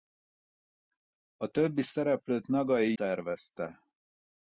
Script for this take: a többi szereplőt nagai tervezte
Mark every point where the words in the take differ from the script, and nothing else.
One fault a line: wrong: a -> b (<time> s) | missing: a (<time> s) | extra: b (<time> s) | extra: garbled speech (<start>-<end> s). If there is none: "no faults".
no faults